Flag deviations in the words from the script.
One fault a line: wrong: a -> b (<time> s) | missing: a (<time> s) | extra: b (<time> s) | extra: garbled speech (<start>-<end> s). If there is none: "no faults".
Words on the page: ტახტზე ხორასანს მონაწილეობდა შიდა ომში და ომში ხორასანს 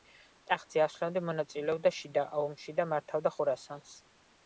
wrong: ხორასანს -> ასვლამდე (0.8 s)
wrong: ომში -> მართავდა (3.0 s)